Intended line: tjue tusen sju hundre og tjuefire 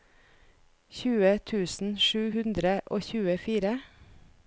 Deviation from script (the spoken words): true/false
false